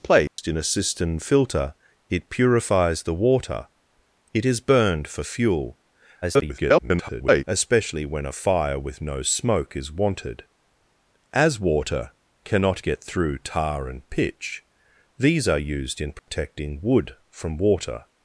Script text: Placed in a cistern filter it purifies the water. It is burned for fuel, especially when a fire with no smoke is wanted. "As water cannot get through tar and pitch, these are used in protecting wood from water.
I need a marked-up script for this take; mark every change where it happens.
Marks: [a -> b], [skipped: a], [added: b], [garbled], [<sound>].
Placed [dropout] in a cistern filter it purifies the water. It is burned for fuel, [garbled] especially when a fire with no smoke is wanted. "As water cannot get through tar and pitch, these are used in protecting [dropout] wood from water.